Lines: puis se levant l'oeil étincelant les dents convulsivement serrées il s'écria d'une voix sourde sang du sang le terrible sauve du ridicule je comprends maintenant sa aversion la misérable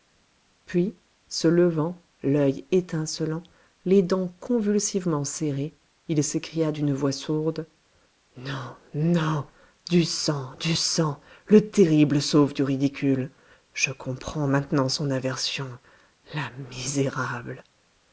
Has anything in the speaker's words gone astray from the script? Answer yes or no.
yes